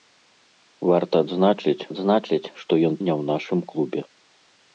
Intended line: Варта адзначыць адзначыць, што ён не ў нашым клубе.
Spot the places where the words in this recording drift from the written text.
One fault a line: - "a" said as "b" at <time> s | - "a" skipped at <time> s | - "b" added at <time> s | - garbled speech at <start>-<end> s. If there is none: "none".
none